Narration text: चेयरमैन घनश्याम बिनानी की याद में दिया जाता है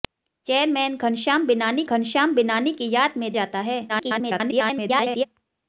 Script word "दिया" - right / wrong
wrong